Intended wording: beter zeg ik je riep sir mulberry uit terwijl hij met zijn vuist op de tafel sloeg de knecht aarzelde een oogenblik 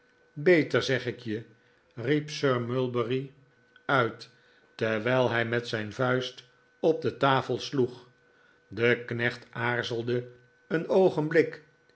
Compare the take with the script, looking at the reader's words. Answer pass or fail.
pass